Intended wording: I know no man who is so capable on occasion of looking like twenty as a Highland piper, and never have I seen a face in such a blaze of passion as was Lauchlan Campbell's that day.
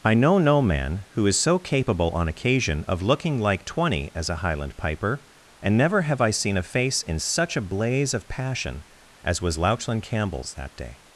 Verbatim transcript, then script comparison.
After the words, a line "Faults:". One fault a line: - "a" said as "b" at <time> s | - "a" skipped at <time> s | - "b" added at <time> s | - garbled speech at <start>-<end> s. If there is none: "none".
I know no man who is so capable on occasion of looking like twenty as a Highland piper, and never have I seen a face in such a blaze of passion as was Lauchlan Campbell's that day.
Faults:
none